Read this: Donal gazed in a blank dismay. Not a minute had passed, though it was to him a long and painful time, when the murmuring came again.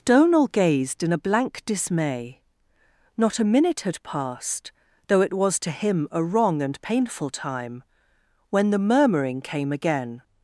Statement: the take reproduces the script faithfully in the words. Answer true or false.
false